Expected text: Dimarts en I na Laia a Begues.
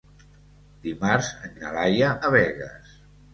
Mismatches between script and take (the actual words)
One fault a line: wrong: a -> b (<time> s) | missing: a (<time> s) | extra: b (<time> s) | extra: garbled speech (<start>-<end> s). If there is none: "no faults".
no faults